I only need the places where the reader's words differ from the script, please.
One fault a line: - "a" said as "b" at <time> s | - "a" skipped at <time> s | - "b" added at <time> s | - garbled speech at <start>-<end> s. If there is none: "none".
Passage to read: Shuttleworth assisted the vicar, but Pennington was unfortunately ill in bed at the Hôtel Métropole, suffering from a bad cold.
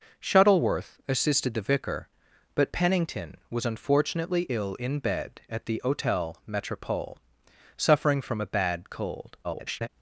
- garbled speech at 9.4-9.9 s